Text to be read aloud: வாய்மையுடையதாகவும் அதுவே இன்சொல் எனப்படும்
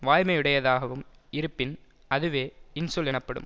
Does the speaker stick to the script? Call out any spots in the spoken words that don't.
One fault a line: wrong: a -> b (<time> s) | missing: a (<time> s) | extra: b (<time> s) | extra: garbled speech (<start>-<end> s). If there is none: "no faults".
extra: இருப்பின் (1.3 s)